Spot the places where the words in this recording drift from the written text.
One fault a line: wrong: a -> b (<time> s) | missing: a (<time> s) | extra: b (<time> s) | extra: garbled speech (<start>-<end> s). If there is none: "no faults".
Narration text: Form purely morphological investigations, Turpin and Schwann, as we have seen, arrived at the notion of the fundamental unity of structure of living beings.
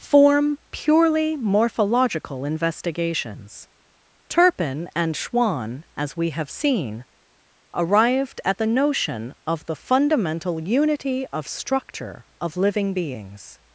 no faults